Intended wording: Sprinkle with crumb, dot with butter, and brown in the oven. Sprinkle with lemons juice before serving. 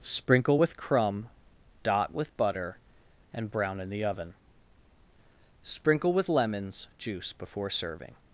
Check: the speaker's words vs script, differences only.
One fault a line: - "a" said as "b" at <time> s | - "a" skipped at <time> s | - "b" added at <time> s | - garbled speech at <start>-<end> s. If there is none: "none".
none